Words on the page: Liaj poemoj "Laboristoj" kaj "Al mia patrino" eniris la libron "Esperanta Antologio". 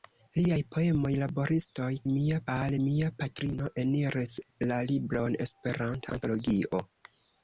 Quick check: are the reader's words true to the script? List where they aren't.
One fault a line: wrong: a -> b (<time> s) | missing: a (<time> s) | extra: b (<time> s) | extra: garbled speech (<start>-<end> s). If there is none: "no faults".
wrong: kaj -> mia (2.1 s)